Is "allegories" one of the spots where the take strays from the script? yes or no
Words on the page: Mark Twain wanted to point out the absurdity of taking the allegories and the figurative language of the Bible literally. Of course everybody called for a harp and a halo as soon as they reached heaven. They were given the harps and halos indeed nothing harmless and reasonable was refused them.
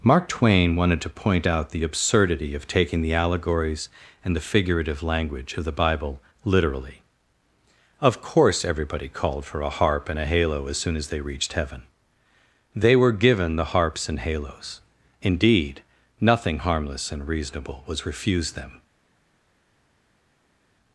no